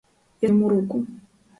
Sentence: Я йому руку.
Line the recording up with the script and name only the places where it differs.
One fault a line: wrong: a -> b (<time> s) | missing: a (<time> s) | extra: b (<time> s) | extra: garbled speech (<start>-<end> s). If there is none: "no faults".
no faults